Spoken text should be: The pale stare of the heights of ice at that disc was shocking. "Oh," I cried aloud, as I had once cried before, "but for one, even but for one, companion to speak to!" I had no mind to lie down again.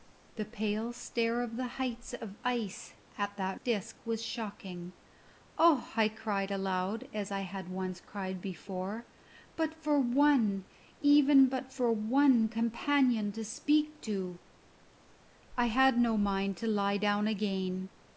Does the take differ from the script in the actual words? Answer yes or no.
no